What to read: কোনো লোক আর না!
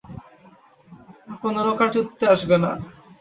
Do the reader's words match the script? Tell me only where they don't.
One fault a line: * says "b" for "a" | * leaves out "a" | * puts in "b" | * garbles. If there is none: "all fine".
* puts in "চুদতে আসবে"